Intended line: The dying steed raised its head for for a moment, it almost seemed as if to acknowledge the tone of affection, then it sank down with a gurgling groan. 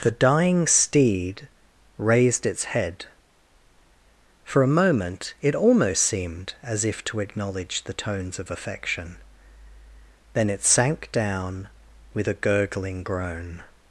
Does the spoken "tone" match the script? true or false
false